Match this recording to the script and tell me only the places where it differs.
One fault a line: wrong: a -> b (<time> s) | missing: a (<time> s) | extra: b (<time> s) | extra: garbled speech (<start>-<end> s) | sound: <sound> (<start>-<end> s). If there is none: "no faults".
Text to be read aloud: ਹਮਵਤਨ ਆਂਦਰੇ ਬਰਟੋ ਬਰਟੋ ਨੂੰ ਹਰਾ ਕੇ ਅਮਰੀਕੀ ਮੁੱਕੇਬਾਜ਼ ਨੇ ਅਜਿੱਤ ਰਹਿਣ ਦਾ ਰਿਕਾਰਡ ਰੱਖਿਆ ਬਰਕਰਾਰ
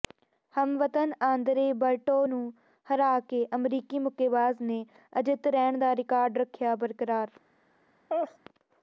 missing: ਬਰਟੋ (2.2 s)
sound: laugh (8.1-8.4 s)